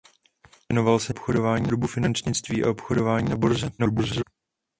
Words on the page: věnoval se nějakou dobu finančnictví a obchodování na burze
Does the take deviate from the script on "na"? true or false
false